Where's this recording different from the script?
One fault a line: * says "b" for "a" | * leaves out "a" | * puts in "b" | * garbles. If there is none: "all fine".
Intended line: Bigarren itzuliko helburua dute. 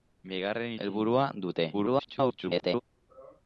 * leaves out "itzuliko"
* garbles